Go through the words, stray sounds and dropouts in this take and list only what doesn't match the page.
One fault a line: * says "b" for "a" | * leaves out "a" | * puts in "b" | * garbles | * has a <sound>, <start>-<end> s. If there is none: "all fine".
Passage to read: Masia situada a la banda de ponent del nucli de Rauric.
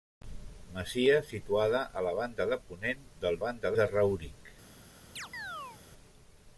* says "banda" for "nucli"
* has a chirp, 5.2-5.8 s